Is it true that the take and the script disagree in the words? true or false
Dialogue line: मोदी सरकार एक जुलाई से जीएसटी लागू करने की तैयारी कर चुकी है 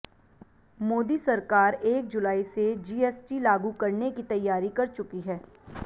false